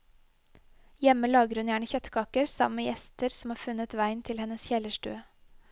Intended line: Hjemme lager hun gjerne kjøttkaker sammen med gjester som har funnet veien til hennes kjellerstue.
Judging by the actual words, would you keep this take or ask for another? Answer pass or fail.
pass